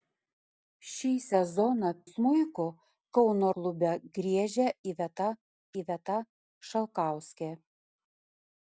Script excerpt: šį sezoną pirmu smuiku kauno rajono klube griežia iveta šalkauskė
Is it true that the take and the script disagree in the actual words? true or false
true